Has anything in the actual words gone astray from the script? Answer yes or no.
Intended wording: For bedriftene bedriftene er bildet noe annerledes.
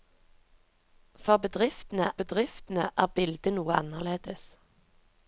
no